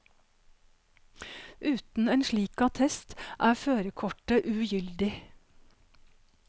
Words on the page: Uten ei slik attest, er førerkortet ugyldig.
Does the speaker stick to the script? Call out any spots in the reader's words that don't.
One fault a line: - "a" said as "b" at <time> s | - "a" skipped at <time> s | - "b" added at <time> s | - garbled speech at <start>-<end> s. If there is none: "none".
- "ei" said as "en" at 2.1 s